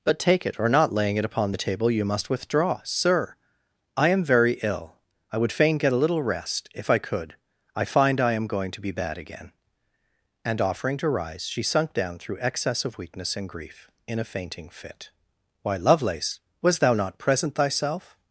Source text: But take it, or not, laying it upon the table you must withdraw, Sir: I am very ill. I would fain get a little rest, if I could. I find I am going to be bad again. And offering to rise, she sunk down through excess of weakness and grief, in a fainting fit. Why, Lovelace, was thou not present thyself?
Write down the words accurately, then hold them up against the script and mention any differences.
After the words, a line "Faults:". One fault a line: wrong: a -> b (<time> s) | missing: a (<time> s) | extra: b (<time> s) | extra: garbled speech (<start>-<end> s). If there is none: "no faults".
But take it, or not, laying it upon the table you must withdraw, Sir: I am very ill. I would fain get a little rest, if I could. I find I am going to be bad again. And offering to rise, she sunk down through excess of weakness and grief, in a fainting fit. Why, Lovelace, was thou not present thyself?
Faults:
no faults